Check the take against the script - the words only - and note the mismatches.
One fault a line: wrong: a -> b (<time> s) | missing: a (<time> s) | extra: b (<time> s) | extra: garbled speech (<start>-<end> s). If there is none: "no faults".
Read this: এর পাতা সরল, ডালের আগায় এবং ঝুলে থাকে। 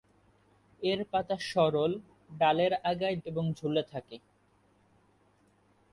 no faults